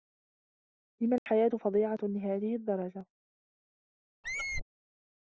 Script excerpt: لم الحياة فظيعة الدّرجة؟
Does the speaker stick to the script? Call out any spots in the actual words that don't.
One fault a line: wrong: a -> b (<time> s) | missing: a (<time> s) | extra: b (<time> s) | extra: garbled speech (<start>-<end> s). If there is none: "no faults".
extra: لهذه (2.0 s)